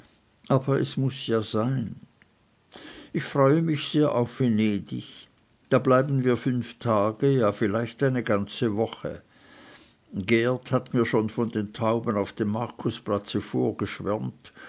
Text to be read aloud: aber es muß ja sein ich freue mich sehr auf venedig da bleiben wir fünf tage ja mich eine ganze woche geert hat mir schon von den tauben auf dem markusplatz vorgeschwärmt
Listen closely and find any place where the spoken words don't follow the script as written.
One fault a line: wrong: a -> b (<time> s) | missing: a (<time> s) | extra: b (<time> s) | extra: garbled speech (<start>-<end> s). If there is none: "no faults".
wrong: mich -> vielleicht (7.5 s)